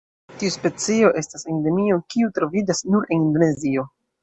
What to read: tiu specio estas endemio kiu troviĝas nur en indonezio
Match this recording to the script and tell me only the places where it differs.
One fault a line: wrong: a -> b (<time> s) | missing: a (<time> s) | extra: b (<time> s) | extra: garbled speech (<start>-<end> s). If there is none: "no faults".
no faults